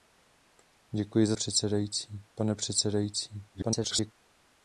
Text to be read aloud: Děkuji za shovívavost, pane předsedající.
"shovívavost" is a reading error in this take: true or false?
true